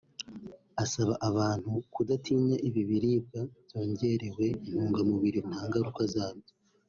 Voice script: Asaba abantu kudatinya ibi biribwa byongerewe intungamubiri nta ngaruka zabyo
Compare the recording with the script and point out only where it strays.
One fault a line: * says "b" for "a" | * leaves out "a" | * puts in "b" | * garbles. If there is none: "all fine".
all fine